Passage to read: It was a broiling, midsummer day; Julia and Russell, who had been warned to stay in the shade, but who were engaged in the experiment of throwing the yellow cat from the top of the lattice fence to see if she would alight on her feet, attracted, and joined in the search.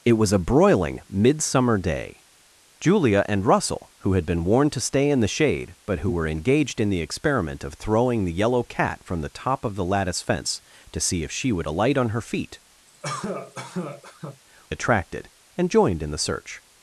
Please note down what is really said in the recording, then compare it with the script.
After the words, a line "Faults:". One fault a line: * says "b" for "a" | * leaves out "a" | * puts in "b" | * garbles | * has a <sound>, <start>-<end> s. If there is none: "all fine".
It was a broiling, midsummer day; Julia and Russell, who had been warned to stay in the shade, but who were engaged in the experiment of throwing the yellow cat from the top of the lattice fence to see if she would alight on her feet, attracted, and joined in the search.
Faults:
* has a cough, 12.9-14.4 s